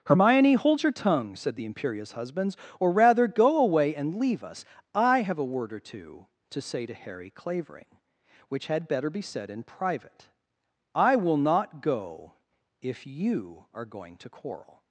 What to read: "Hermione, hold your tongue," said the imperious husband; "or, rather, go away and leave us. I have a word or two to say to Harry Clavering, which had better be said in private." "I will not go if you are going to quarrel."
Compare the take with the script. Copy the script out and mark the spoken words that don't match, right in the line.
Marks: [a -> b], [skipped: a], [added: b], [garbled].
"Hermione, hold your tongue," said the imperious [husband; -> husbands] "or, rather, go away and leave us. I have a word or two to say to Harry Clavering, which had better be said in private." "I will not go if you are going to quarrel."